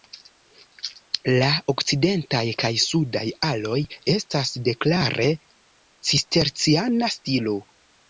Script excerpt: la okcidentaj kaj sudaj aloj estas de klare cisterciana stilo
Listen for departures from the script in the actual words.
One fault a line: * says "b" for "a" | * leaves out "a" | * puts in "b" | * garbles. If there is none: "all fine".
all fine